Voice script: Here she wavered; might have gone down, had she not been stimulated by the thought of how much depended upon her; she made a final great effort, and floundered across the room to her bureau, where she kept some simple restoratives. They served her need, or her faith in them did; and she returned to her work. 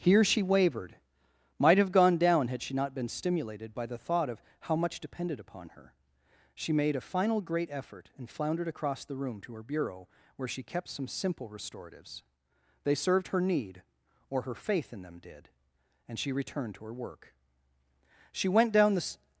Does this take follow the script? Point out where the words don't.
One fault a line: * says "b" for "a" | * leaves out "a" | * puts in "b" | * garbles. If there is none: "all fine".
* puts in "She went down the"